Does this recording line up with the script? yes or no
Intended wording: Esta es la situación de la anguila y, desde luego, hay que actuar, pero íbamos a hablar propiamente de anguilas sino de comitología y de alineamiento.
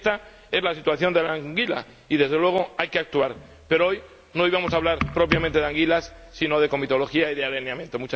no